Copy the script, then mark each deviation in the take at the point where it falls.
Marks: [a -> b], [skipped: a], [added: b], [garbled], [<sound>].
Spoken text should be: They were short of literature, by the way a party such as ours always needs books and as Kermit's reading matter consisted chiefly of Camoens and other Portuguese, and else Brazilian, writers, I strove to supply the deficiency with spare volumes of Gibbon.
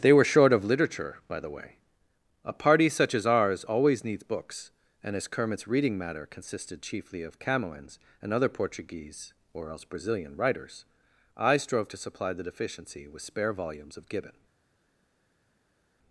They were short of literature, by the way a party such as ours always needs books and as Kermit's reading matter consisted chiefly of Camoens and other Portuguese, [and -> or] else Brazilian, writers, I strove to supply the deficiency with spare volumes of Gibbon.